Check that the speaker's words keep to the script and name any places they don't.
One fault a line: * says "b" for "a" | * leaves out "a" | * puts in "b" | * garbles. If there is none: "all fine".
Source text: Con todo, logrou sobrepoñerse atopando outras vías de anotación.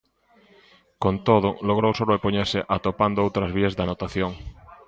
all fine